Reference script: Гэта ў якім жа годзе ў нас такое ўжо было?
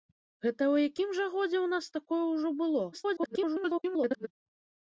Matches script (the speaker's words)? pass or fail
fail